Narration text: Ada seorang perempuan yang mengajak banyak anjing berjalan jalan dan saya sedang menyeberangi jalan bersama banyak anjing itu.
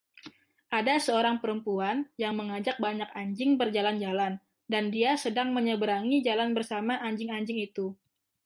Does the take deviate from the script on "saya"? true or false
true